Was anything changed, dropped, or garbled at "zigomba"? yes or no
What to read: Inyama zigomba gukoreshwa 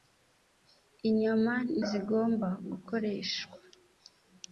no